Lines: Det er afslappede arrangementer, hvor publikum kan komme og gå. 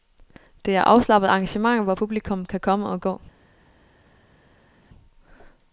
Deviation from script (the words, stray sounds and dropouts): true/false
false